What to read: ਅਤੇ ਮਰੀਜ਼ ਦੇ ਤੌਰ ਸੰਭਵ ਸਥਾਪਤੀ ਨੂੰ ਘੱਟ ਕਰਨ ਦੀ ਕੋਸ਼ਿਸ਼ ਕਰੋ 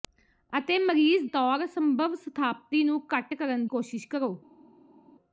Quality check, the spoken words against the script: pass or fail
fail